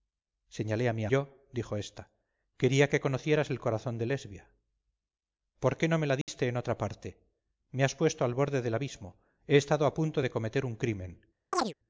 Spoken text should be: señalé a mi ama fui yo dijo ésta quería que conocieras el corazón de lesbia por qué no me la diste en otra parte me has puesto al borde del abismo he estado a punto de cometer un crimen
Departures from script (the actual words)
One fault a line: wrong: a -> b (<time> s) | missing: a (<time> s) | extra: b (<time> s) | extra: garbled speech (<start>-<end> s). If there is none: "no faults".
missing: ama fui (1.0 s)